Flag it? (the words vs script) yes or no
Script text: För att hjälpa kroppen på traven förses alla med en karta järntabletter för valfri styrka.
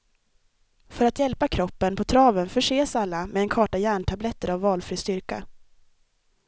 yes